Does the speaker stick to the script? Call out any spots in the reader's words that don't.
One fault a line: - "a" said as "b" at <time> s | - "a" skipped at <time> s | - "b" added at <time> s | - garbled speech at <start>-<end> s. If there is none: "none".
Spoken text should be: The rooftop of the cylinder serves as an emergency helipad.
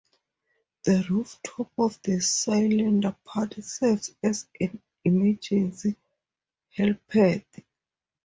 - "part" added at 3.2 s